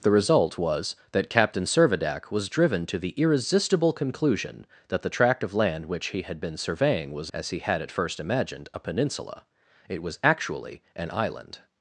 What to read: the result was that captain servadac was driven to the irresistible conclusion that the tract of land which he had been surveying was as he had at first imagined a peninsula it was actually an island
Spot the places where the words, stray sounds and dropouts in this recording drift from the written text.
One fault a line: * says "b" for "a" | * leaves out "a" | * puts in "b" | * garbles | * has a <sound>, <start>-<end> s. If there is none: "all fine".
all fine